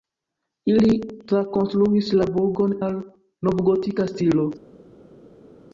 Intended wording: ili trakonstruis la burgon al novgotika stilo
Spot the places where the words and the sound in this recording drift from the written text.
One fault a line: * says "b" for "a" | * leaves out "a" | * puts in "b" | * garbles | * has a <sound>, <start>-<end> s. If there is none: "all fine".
all fine